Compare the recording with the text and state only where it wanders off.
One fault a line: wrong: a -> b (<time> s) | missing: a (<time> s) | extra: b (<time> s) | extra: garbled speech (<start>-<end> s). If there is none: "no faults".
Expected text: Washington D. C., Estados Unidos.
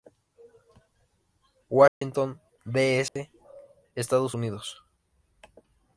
no faults